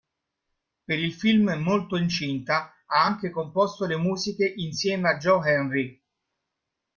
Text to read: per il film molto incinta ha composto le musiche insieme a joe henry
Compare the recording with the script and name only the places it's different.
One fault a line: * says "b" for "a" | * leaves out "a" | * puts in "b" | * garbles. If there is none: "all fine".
* puts in "anche"